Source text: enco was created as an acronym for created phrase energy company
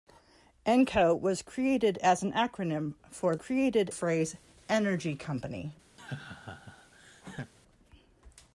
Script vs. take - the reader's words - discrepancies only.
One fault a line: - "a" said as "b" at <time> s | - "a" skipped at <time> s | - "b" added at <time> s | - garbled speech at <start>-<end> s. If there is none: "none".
none